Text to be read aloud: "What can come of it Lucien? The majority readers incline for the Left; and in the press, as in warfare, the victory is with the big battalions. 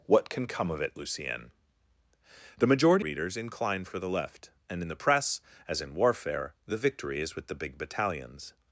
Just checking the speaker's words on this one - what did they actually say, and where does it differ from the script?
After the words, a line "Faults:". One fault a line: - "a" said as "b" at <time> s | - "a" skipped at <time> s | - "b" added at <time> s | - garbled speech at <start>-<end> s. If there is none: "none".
"What can come of it Lucien? The majority readers incline for the Left; and in the press, as in warfare, the victory is with the big battalions.
Faults:
none